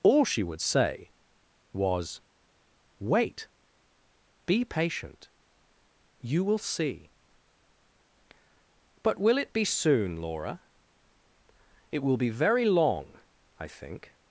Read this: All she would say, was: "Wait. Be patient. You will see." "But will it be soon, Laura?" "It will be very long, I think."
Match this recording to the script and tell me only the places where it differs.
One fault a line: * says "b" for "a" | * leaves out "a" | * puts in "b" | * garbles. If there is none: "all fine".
all fine